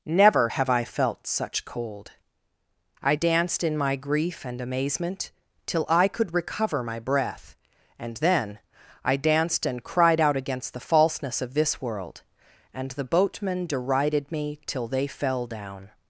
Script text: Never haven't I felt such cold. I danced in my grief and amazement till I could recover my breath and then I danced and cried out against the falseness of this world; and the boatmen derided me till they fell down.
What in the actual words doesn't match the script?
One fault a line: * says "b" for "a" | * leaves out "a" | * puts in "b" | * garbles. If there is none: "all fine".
* says "have" for "haven't"